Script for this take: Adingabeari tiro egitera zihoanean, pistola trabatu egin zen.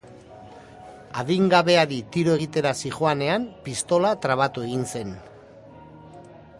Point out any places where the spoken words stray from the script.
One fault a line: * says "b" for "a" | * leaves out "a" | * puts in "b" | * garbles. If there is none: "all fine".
all fine